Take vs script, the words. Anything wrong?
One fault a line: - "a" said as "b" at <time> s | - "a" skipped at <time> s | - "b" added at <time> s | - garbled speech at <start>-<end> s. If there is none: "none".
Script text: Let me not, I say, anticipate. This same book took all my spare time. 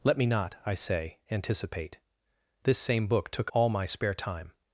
none